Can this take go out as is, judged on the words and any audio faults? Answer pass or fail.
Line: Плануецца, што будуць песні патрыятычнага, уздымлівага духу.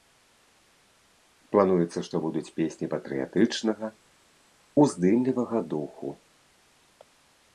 pass